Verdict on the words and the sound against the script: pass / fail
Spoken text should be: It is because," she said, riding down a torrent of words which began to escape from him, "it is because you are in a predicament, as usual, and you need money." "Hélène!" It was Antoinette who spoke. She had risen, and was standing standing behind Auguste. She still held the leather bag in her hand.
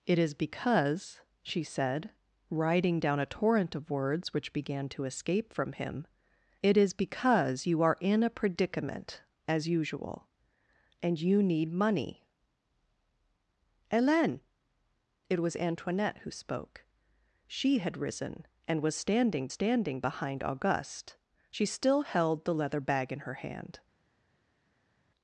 pass